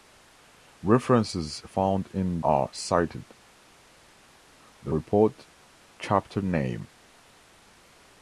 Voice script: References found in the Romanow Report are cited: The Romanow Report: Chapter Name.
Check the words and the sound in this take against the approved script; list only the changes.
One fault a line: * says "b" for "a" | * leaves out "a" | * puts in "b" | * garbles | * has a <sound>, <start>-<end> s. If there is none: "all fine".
* leaves out "the Romanow Report"
* leaves out "Romanow"